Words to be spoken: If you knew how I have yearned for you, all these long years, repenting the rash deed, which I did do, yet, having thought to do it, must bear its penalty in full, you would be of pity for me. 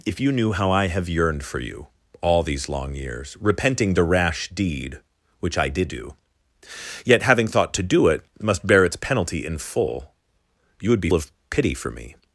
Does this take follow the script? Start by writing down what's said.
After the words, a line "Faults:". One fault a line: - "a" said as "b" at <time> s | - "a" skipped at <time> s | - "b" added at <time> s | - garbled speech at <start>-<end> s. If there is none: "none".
If you knew how I have yearned for you, all these long years, repenting the rash deed, which I did do, yet, having thought to do it, must bear its penalty in full, you would be of pity for me.
Faults:
none